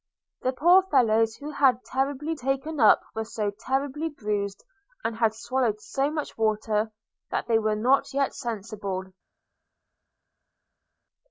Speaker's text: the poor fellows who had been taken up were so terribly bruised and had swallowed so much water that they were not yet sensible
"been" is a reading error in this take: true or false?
true